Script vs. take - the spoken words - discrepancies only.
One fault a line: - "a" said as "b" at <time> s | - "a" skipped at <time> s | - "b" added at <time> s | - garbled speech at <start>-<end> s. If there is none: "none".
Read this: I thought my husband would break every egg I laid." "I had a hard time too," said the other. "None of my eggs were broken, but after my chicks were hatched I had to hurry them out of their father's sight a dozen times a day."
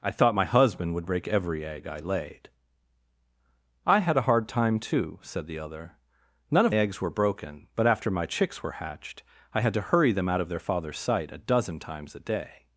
- "my" skipped at 6.8 s